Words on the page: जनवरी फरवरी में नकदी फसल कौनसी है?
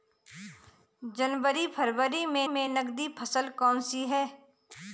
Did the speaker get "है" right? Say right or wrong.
right